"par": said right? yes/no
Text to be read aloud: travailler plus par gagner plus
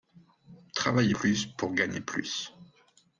no